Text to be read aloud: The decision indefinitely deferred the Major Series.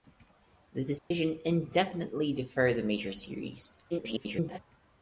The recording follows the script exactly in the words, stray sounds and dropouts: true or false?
false